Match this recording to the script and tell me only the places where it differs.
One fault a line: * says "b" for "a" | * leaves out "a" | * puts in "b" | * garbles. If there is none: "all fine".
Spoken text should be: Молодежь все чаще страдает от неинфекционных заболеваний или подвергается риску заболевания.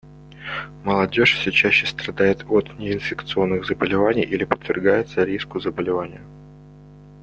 all fine